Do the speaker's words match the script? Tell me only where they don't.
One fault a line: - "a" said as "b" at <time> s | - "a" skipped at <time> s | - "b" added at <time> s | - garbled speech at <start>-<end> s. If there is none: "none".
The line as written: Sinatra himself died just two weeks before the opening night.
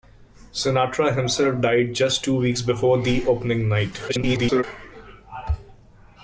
- garbled speech at 4.1-4.6 s